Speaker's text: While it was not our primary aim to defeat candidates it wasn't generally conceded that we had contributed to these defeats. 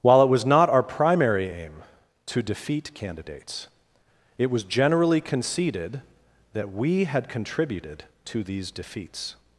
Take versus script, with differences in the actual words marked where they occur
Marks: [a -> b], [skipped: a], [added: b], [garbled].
While it was not our primary aim to defeat candidates it [wasn't -> was] generally conceded that we had contributed to these defeats.